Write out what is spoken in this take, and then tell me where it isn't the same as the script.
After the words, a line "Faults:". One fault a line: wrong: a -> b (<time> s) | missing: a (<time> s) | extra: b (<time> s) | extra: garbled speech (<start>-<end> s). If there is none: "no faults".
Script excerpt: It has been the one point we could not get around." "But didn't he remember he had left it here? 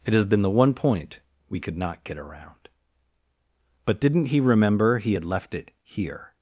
It has been the one point we could not get around." "But didn't he remember he had left it here?
Faults:
no faults